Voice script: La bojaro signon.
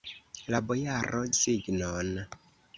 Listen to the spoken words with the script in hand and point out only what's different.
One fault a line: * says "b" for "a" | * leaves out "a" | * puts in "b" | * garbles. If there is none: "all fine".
all fine